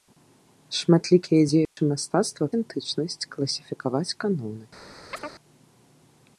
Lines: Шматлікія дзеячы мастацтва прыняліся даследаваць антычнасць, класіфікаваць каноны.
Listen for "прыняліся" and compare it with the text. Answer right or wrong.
wrong